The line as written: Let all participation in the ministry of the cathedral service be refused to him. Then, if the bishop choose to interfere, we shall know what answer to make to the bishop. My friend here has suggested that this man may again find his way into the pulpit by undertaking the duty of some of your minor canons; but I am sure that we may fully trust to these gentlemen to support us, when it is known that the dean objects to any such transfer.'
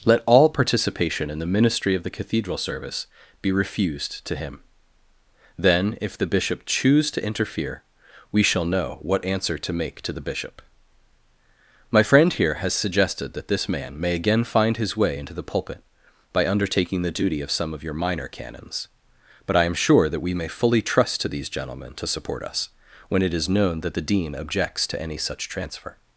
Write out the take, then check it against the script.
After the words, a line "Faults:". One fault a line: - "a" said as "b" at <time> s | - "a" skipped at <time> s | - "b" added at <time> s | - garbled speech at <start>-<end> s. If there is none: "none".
Let all participation in the ministry of the cathedral service be refused to him. Then, if the bishop choose to interfere, we shall know what answer to make to the bishop. My friend here has suggested that this man may again find his way into the pulpit by undertaking the duty of some of your minor canons; but I am sure that we may fully trust to these gentlemen to support us, when it is known that the dean objects to any such transfer.'
Faults:
none